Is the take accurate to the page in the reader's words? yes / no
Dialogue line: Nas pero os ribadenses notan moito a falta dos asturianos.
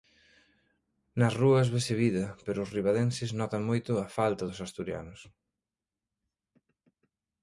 no